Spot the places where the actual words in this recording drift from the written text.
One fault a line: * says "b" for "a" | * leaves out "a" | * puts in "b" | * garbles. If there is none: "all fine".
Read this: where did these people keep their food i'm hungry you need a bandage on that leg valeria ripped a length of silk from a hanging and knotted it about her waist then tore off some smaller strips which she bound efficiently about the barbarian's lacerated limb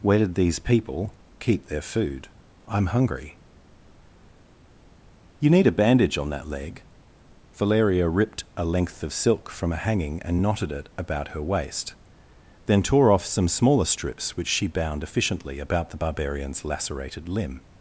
all fine